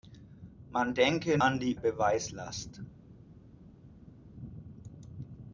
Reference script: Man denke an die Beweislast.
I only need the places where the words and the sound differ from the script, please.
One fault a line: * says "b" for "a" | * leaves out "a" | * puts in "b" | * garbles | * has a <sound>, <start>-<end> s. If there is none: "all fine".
all fine